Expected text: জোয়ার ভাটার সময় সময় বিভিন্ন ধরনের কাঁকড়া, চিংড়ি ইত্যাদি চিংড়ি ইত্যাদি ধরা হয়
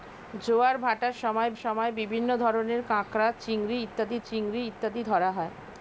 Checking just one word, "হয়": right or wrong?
right